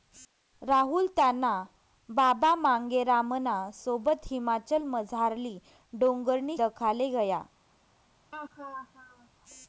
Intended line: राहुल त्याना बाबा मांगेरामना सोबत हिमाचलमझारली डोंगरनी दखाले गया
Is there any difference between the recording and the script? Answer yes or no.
no